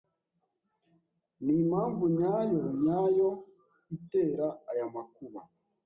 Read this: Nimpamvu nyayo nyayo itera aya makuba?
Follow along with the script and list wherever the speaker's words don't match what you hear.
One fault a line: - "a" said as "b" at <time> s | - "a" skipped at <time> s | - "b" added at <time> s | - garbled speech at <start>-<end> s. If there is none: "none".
none